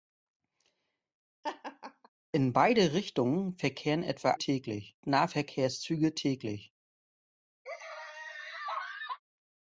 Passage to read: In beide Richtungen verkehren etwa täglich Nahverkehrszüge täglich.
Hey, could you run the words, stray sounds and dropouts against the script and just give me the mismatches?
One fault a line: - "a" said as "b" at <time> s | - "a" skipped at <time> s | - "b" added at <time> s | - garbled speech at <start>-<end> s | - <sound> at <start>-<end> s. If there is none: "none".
- laugh at 1.4-2.1 s
- laugh at 7.6-9.2 s